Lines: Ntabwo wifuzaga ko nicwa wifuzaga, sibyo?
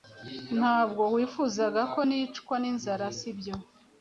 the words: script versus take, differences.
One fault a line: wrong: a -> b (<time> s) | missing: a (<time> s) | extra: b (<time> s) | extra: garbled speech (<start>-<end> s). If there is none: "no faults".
wrong: wifuzaga -> n'inzara (2.6 s)